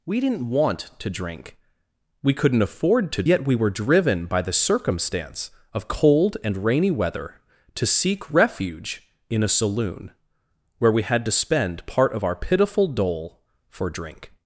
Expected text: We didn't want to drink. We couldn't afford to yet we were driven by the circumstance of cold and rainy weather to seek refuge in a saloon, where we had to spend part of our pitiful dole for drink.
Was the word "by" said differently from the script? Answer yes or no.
no